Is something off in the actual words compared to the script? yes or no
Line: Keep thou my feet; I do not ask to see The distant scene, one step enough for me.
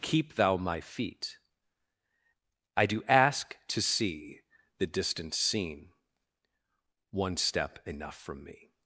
yes